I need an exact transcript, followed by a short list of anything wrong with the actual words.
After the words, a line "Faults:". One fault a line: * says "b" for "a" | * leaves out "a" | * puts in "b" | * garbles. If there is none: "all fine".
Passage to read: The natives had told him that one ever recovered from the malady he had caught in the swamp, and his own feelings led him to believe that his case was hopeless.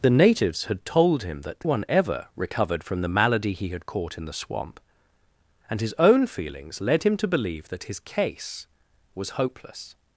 The natives had told him that one ever recovered from the malady he had caught in the swamp, and his own feelings led him to believe that his case was hopeless.
Faults:
all fine